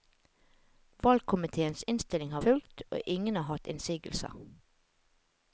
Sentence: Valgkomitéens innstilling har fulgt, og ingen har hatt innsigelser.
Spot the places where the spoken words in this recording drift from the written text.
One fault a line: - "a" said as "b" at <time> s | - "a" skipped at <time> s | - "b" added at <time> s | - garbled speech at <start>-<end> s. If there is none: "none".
none